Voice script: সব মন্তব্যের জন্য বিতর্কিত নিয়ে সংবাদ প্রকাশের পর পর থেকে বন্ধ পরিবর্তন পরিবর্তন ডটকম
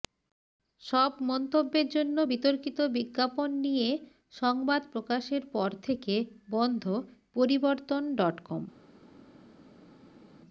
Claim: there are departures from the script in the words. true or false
true